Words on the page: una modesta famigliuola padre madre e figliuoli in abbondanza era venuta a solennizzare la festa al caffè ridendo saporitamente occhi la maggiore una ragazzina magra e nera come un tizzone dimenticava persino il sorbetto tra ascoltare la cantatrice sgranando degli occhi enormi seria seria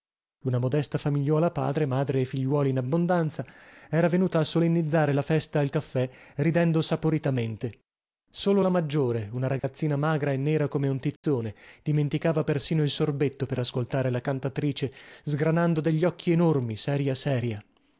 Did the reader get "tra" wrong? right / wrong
wrong